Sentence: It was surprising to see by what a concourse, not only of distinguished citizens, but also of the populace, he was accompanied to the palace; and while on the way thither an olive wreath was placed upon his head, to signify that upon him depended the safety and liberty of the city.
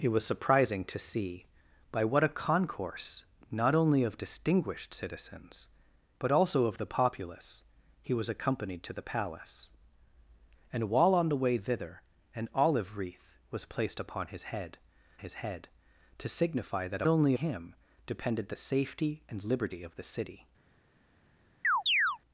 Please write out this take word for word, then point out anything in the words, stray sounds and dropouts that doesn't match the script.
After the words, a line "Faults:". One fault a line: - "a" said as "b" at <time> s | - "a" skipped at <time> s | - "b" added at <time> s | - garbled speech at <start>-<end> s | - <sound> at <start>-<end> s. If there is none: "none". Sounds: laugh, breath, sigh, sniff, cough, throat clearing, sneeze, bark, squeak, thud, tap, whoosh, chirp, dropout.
It was surprising to see by what a concourse, not only of distinguished citizens, but also of the populace, he was accompanied to the palace; and while on the way thither an olive wreath was placed upon his head his head, to signify that only him depended the safety and liberty of the city.
Faults:
- "his head" added at 15.2 s
- "upon" said as "only" at 17.1 s
- chirp at 21.6-22.2 s